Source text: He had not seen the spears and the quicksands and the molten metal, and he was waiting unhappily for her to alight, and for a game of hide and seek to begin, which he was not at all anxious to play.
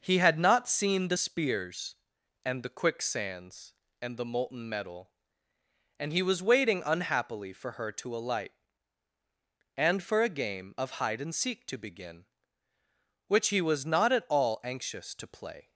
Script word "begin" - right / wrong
right